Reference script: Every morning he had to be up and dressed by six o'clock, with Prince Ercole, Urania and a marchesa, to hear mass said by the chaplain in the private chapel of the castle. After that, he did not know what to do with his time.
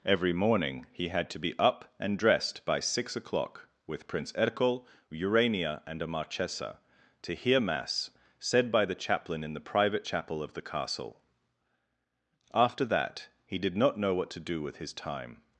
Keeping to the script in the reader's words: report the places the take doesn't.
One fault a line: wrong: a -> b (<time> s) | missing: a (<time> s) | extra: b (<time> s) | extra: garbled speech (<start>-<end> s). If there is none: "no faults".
no faults